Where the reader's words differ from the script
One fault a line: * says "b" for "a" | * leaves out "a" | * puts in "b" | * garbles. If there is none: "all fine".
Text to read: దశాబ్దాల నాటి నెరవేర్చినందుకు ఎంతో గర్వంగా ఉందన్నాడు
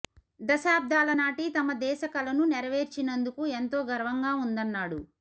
* puts in "తమ దేశ కలను"